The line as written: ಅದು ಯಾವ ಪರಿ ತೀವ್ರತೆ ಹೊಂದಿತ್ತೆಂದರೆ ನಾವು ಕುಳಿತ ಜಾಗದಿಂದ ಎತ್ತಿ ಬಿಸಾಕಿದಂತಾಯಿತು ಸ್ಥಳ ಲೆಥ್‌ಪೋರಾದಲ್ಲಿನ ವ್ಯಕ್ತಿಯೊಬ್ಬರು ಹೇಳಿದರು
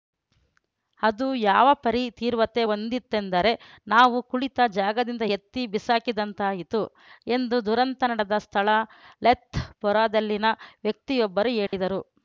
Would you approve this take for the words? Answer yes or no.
no